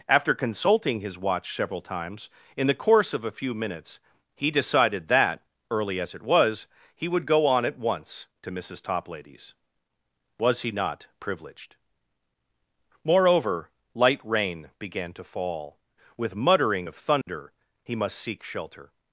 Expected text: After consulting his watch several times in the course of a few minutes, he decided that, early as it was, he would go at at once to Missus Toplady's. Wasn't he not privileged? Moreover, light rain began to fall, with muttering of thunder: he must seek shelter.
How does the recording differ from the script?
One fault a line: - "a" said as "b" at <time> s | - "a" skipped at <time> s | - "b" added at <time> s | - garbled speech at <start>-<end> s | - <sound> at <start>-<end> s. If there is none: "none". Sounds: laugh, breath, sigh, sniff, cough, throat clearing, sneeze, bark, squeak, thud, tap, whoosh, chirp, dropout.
- "at" said as "on" at 7.5 s
- "Wasn't" said as "Was" at 10.4 s
- dropout at 17.2-17.3 s